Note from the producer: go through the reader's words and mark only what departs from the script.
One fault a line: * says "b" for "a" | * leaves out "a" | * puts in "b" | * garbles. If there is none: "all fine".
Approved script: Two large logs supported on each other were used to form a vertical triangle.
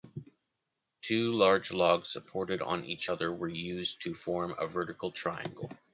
all fine